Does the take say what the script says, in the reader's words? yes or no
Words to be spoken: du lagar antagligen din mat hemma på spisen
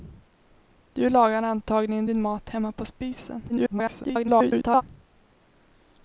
no